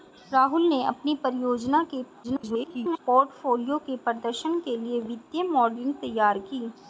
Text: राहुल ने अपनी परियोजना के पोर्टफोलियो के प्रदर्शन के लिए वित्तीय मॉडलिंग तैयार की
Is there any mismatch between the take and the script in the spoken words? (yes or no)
yes